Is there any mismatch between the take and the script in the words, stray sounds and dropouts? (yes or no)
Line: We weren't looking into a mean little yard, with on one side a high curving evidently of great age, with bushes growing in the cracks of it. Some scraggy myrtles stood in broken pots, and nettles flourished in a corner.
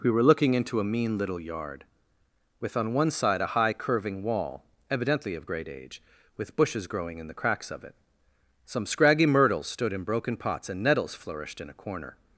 yes